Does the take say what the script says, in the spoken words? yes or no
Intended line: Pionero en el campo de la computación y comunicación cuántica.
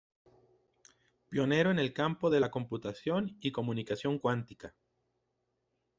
yes